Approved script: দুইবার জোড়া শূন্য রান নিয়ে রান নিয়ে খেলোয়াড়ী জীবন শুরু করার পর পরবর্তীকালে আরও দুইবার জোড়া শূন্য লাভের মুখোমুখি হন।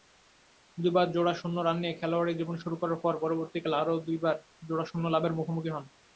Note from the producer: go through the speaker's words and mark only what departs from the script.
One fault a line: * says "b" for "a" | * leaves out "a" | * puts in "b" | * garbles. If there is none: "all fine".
* leaves out "রান নিয়ে"